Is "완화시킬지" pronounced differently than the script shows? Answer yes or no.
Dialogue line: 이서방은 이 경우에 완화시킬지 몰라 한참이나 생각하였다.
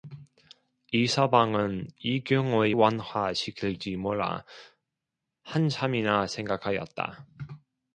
no